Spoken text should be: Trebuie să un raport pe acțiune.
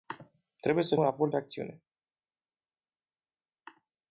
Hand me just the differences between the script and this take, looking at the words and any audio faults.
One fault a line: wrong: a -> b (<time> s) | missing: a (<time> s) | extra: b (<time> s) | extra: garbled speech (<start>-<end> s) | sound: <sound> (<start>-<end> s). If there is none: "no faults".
no faults